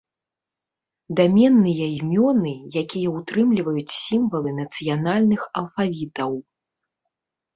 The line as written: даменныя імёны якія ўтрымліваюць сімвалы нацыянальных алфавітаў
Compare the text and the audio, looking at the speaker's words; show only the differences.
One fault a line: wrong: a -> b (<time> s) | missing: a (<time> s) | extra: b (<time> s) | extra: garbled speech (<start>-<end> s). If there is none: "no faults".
no faults